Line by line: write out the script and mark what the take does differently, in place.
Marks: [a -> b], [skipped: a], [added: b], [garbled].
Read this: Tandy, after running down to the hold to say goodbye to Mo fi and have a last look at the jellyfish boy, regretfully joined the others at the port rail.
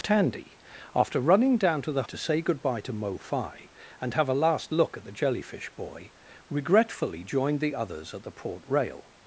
Tandy, after running down to the [skipped: hold] to say goodbye to Mo fi and have a last look at the jellyfish boy, regretfully joined the others at the port rail.